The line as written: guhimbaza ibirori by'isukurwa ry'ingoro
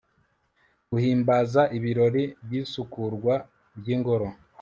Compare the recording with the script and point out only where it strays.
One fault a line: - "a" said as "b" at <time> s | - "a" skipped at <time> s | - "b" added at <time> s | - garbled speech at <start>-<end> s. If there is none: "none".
none